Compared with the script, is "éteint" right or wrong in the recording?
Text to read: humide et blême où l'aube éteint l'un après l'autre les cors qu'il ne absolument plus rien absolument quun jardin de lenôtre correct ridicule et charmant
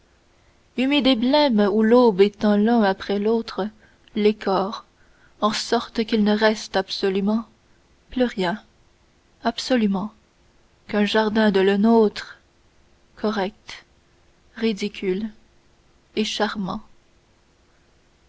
right